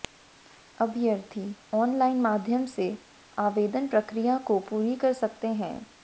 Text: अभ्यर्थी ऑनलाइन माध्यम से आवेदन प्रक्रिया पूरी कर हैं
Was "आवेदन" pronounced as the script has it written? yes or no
yes